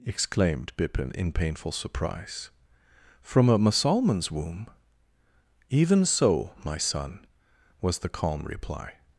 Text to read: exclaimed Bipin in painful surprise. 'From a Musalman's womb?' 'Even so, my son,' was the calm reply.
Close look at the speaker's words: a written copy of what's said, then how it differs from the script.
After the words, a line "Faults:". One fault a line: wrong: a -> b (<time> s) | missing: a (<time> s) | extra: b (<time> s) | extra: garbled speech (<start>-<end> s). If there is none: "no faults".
exclaimed Bipin in painful surprise. 'From a Musalman's womb?' 'Even so, my son,' was the calm reply.
Faults:
no faults